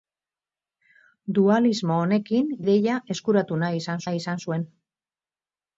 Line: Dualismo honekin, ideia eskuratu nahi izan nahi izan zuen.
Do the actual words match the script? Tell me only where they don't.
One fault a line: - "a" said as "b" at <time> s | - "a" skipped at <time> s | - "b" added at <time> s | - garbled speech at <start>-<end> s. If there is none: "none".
none